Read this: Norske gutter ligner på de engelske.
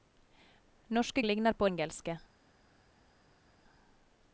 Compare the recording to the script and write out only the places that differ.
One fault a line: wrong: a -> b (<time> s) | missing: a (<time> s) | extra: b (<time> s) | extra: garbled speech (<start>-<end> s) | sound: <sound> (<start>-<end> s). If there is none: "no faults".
missing: gutter (1.2 s)
missing: de (1.7 s)